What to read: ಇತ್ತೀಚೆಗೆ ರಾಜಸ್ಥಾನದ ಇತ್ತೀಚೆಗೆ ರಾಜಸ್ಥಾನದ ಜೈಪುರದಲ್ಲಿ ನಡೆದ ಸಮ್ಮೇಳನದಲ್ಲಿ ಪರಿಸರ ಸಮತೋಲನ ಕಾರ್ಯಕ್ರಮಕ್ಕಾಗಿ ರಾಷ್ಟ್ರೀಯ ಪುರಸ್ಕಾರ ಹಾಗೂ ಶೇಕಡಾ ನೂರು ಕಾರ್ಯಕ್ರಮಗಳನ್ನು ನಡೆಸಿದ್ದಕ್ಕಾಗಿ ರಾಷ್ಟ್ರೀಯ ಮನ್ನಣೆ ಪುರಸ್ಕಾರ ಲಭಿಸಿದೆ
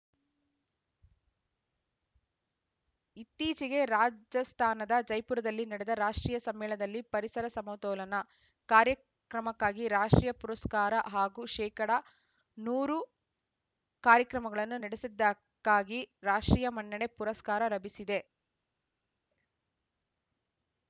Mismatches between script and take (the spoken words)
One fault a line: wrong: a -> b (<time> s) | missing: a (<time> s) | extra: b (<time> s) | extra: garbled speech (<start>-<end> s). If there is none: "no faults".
missing: ಇತ್ತೀಚೆಗೆ ರಾಜಸ್ಥಾನದ (4.9 s)
extra: ರಾಷ್ಟ್ರೀಯ (6.0 s)